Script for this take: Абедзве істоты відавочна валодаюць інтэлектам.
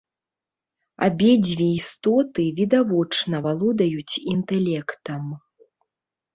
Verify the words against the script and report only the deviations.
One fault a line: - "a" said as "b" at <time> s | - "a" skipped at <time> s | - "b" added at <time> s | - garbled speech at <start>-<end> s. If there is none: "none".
none